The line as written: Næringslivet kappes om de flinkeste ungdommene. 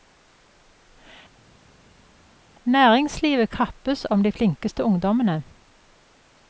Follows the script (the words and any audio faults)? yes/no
yes